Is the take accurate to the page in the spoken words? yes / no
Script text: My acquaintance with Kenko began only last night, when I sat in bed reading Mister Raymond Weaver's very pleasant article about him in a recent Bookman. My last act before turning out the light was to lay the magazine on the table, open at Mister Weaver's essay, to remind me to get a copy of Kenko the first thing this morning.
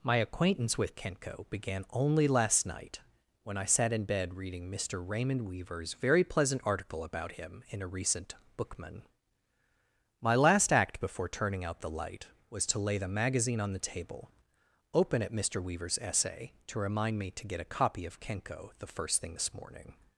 yes